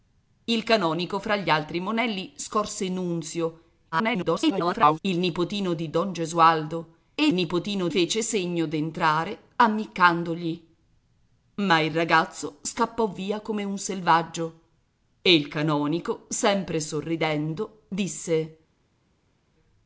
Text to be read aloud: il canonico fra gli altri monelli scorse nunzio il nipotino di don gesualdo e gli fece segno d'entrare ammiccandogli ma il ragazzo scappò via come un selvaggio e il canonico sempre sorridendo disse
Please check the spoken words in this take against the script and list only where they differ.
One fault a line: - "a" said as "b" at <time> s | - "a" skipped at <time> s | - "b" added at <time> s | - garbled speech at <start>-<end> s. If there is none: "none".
- garbled speech at 3.9-5.0 s
- "gli" said as "nipotino" at 7.3 s